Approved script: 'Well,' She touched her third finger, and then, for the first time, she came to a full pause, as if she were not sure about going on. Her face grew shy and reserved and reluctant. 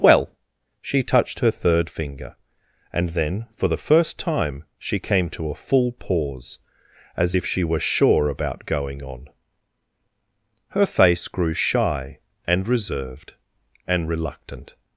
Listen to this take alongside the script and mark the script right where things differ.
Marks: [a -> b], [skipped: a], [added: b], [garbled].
'Well,' She touched her third finger, and then, for the first time, she came to a full pause, as if she were [skipped: not] sure about going on. Her face grew shy and reserved and reluctant.